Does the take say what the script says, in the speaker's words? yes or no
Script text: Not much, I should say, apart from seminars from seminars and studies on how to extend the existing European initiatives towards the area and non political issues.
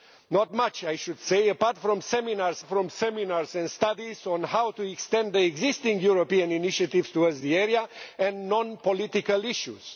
yes